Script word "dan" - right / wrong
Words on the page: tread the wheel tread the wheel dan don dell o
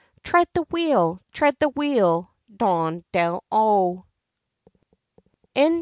wrong